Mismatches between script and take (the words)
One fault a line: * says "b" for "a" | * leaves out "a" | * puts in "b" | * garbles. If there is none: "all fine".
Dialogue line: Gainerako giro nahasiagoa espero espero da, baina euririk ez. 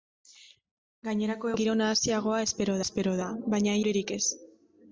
all fine